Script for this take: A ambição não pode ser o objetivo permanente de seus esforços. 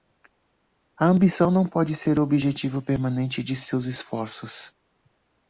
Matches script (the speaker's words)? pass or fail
pass